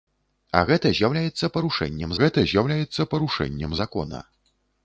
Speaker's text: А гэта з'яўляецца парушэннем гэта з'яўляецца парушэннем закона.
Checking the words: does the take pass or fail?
pass